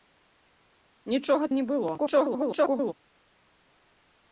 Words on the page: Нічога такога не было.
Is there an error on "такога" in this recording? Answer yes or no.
yes